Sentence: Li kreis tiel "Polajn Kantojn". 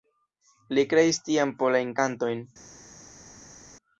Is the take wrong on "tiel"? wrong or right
wrong